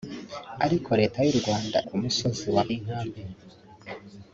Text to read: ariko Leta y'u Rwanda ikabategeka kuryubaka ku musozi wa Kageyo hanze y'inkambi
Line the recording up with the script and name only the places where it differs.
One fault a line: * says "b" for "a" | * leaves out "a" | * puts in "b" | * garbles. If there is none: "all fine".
* leaves out "ikabategeka kuryubaka"
* leaves out "Kageyo hanze"